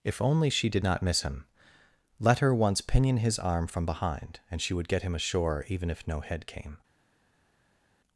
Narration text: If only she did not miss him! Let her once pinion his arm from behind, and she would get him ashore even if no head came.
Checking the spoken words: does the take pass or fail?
pass